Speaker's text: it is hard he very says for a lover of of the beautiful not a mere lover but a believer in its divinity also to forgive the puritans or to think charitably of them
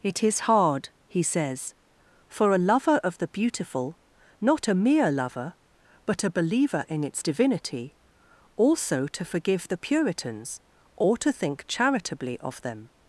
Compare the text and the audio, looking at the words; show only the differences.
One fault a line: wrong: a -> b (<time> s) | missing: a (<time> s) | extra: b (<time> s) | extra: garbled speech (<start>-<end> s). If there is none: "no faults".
missing: very (1.2 s)
missing: of (3.2 s)